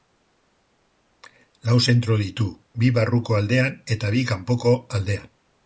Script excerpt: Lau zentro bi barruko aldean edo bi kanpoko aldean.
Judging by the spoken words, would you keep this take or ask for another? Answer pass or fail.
fail